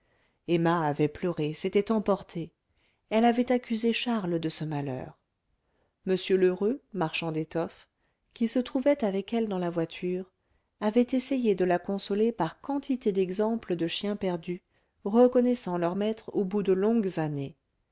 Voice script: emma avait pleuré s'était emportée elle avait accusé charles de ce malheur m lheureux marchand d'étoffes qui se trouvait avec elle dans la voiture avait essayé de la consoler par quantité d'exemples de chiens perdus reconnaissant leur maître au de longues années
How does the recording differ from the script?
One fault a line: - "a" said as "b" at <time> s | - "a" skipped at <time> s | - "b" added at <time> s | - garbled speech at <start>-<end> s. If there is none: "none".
- "bout" added at 16.5 s